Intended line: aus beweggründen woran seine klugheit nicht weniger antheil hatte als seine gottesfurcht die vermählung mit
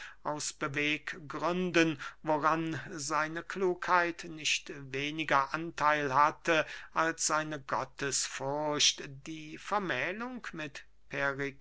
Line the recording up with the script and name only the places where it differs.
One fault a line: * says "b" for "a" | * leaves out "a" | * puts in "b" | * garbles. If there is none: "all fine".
all fine